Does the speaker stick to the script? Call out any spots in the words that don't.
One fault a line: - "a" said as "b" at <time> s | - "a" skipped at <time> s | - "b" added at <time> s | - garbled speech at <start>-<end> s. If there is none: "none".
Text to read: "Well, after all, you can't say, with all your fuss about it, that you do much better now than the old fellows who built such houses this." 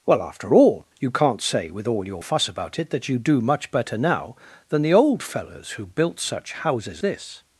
none